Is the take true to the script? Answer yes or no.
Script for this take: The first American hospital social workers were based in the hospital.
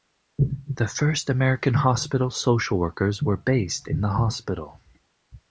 yes